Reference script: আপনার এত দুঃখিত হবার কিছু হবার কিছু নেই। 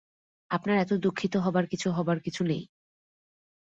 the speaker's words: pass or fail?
pass